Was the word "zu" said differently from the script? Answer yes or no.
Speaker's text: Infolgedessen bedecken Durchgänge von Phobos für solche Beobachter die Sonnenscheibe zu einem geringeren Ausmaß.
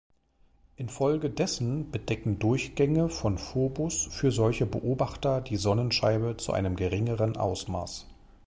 no